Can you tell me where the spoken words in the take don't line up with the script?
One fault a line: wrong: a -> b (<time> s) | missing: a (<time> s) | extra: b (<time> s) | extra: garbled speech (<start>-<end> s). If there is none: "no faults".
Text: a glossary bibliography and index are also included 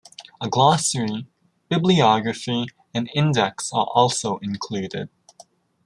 no faults